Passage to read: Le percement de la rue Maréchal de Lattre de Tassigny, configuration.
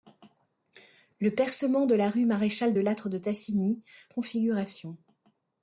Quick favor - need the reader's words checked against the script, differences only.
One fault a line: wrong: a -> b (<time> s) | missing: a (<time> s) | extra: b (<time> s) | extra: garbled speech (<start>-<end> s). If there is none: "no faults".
no faults